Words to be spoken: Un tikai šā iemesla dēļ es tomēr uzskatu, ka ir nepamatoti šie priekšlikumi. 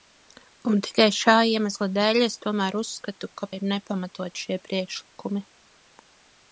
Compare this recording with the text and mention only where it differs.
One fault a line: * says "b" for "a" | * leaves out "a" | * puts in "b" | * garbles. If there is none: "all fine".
all fine